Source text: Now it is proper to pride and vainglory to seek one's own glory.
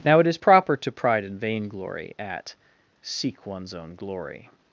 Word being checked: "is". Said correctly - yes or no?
yes